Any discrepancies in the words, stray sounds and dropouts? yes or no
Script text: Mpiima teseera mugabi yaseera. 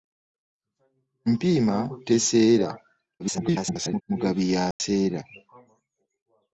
yes